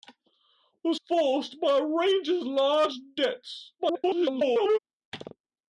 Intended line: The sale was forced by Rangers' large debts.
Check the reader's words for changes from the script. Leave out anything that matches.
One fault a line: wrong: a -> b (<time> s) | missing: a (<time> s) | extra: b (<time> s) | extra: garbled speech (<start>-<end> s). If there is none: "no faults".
missing: sale was (0.9 s)
extra: garbled speech (3.8-4.8 s)